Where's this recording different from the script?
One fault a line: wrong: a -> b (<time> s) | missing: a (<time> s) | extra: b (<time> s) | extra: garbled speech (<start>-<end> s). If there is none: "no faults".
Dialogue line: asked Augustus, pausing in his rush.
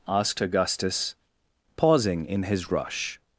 no faults